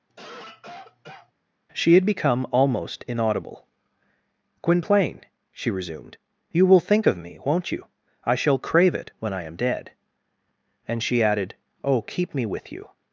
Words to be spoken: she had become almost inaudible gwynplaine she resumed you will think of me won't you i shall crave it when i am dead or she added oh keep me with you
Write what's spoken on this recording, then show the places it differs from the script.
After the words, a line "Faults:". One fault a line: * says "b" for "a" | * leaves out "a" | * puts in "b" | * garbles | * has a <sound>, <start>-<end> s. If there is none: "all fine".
she had become almost inaudible gwynplaine she resumed you will think of me won't you i shall crave it when i am dead and she added oh keep me with you
Faults:
* has a cough, 0.1-1.3 s
* says "and" for "or"